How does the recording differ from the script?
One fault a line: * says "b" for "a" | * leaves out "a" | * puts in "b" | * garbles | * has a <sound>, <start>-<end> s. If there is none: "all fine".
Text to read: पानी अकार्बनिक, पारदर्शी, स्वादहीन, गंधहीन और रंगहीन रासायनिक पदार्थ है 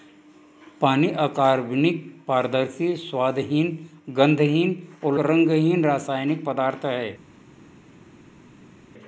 all fine